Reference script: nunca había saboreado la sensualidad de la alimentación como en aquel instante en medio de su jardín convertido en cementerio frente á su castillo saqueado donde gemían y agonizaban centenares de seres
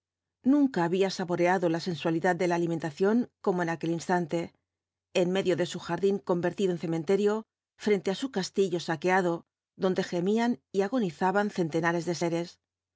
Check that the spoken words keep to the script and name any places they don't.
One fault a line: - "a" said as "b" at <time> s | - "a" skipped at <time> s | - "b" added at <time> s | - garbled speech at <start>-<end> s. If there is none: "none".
none